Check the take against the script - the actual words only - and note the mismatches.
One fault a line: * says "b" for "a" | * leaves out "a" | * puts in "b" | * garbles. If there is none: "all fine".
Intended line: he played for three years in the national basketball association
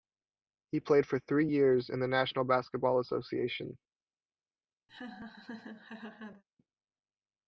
all fine